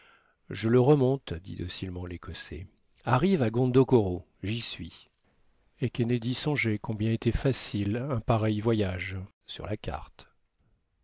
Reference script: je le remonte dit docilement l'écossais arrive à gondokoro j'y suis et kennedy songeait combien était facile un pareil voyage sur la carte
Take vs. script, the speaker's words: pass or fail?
pass